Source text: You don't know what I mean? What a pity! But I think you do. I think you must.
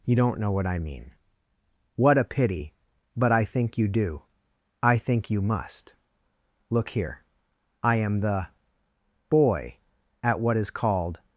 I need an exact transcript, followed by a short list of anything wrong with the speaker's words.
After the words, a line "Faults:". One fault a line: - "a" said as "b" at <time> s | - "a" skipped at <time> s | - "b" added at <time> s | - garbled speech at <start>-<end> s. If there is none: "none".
You don't know what I mean? What a pity! But I think you do. I think you must. Look here. I am the Boy at what is called
Faults:
- "Look here I am the Boy at what is called" added at 6.7 s